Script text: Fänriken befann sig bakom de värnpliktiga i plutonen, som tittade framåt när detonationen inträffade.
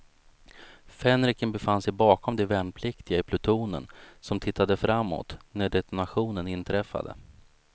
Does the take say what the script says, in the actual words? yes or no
yes